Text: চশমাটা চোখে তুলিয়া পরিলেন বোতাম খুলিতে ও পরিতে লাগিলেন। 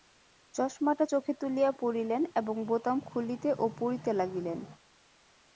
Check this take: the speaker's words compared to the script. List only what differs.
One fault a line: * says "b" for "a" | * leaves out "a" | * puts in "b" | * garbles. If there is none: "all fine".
* puts in "এবং"